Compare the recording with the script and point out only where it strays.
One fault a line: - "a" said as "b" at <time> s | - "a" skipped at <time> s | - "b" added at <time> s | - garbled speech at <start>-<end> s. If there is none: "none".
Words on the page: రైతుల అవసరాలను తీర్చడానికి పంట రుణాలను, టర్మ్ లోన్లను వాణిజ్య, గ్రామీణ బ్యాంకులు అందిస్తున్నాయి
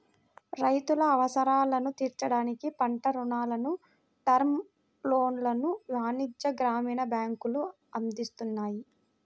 none